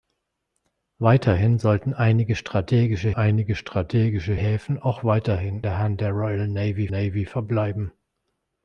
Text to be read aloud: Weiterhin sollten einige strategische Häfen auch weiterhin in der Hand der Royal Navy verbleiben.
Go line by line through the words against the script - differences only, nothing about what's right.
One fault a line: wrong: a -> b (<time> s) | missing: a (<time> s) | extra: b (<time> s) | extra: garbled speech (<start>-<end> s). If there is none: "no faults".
extra: einige strategische (3.1 s)
missing: in (5.6 s)
extra: Navy (6.9 s)